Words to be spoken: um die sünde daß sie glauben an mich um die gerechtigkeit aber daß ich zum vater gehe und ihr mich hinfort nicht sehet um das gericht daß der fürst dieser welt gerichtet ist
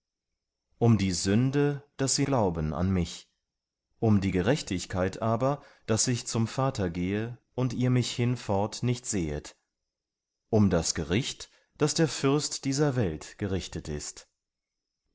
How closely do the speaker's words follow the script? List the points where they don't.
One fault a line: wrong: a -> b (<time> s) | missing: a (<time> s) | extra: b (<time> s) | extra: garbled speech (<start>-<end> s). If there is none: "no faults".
no faults